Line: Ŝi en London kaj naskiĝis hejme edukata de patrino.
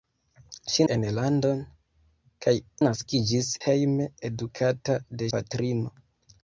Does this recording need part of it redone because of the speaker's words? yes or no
no